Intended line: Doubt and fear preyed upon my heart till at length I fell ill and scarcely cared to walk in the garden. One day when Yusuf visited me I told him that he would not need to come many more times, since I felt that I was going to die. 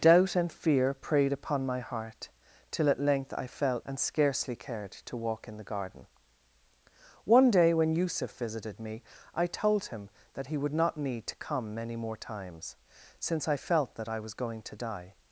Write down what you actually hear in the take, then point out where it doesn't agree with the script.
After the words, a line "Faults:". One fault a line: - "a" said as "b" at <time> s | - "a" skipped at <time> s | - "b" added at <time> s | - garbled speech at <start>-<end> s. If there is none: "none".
Doubt and fear preyed upon my heart till at length I fell and scarcely cared to walk in the garden. One day when Yusuf visited me I told him that he would not need to come many more times, since I felt that I was going to die.
Faults:
- "ill" skipped at 3.8 s